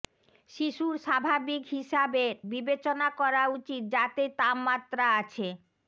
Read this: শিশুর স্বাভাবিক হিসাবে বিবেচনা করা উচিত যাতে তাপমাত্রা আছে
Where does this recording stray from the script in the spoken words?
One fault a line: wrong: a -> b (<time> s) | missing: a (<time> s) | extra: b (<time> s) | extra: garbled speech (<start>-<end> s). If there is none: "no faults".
no faults